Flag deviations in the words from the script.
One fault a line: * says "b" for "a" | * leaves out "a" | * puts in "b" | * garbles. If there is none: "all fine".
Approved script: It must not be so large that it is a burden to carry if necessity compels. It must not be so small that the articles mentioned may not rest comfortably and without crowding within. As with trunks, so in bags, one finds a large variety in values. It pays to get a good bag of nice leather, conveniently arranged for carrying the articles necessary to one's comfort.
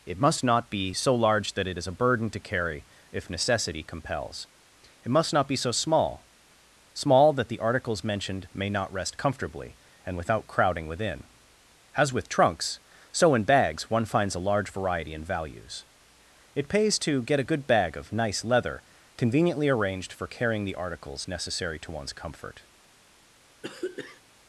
* puts in "small"